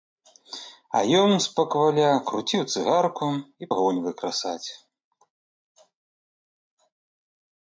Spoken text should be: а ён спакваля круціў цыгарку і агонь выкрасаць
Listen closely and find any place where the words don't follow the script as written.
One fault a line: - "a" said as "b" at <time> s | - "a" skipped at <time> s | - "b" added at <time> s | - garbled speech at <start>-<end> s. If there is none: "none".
none